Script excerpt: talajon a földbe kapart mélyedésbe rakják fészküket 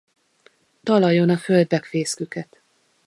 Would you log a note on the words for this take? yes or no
yes